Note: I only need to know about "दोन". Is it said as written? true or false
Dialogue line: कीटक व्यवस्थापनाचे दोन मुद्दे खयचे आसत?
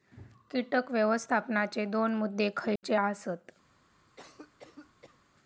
true